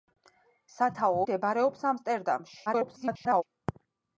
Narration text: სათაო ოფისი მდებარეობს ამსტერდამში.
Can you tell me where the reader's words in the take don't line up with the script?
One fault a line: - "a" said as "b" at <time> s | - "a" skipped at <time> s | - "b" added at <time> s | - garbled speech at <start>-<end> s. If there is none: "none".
- "ოფისი" skipped at 1.2 s
- garbled speech at 2.7-3.4 s